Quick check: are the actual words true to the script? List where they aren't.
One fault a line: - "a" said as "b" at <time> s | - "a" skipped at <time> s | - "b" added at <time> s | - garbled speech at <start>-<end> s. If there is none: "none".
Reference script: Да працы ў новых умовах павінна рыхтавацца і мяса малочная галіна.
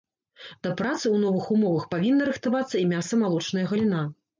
none